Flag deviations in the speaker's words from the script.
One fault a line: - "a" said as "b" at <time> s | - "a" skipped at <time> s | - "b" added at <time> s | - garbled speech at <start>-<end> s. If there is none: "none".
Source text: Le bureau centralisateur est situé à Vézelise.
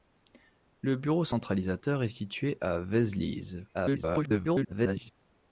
- garbled speech at 3.7-5.1 s